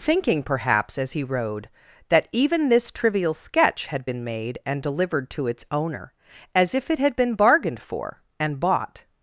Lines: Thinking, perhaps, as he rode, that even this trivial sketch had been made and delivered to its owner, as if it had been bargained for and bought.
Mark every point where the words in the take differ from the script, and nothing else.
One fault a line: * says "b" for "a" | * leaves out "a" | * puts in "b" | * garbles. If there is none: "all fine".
all fine